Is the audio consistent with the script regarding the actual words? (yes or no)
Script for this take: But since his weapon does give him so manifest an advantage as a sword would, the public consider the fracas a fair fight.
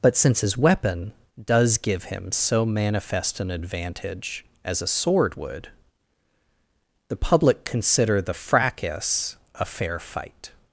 yes